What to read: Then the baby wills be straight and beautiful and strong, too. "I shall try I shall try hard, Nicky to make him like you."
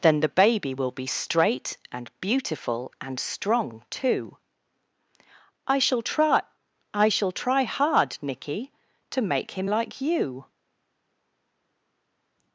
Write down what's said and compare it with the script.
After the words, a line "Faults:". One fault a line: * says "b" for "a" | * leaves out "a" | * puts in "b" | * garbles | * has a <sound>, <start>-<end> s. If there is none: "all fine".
Then the baby will be straight and beautiful and strong, too. "I shall try I shall try hard, Nicky to make him like you."
Faults:
* says "will" for "wills"